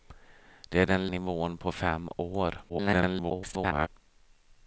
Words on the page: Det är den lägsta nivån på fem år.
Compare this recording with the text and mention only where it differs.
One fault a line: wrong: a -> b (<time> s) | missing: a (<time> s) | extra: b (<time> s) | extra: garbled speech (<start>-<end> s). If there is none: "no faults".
missing: lägsta (1.1 s)
extra: garbled speech (2.7-3.9 s)